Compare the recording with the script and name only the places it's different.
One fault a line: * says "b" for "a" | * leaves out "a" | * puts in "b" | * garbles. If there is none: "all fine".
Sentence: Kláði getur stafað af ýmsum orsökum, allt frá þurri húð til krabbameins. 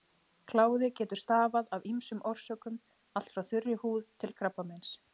all fine